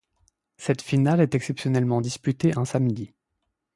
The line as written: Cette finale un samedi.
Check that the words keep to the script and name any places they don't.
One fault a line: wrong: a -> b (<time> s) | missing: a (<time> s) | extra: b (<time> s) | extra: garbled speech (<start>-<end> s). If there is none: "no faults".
extra: est exceptionnellement disputée (1.2 s)